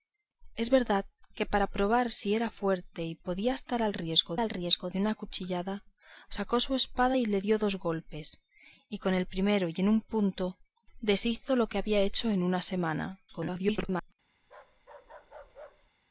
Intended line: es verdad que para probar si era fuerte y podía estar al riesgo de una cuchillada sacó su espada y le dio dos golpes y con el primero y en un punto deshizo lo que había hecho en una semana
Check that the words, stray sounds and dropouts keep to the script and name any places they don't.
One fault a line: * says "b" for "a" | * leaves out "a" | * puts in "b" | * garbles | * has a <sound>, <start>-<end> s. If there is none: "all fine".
* puts in "al riesgo"
* garbles
* has a bark, 14.4-15.9 s